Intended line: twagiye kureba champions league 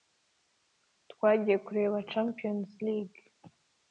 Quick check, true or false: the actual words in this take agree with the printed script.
true